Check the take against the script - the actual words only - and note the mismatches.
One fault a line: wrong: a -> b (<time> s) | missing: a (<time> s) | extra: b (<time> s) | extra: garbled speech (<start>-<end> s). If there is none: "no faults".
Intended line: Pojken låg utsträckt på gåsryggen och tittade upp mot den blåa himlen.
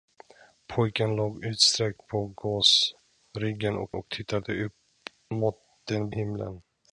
extra: och (3.9 s)
missing: blåa (6.1 s)